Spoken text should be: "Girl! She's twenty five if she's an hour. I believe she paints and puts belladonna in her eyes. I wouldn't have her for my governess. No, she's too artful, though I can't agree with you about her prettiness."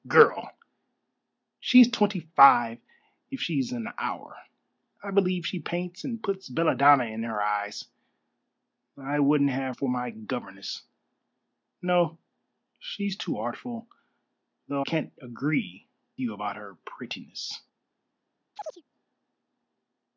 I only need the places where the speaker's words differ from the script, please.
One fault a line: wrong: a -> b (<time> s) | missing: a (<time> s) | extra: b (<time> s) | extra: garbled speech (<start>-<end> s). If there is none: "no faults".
missing: her (9.8 s)
missing: I (14.8 s)
missing: with (15.9 s)